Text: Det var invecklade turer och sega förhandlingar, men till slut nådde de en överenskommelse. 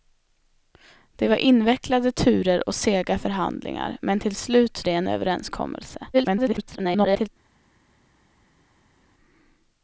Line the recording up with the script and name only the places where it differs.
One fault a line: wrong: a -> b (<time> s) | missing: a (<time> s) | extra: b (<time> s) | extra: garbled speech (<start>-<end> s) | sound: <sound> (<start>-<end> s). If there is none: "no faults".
missing: nådde (4.8 s)
extra: garbled speech (6.1-7.3 s)